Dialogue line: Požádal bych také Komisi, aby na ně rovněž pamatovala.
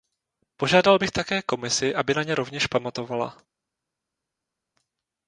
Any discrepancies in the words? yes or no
no